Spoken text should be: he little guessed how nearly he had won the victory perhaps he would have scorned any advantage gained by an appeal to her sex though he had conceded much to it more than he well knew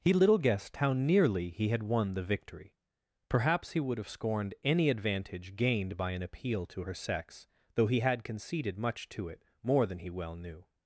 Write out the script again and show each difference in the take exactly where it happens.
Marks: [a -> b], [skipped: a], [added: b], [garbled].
he little guessed how nearly he had won the victory perhaps he would have scorned any advantage gained by an appeal to her sex though he had conceded much to it more than he well knew